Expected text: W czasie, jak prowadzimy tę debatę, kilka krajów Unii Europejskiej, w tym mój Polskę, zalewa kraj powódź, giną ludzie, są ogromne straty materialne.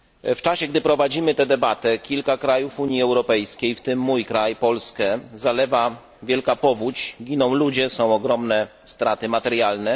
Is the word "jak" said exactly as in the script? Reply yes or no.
no